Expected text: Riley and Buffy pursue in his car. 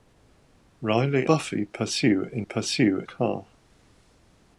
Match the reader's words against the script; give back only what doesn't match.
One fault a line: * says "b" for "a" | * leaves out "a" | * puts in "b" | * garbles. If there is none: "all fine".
* leaves out "and"
* says "pursue" for "his"